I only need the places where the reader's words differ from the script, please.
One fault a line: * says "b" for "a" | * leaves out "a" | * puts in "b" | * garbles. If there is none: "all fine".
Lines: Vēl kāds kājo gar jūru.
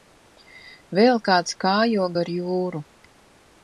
all fine